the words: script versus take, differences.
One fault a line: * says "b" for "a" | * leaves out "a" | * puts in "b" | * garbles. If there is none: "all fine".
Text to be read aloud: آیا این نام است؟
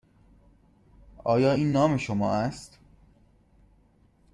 * puts in "شما"